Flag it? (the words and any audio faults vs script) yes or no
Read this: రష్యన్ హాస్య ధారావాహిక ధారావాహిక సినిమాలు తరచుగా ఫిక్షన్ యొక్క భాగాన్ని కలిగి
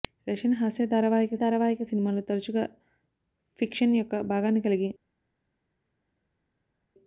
no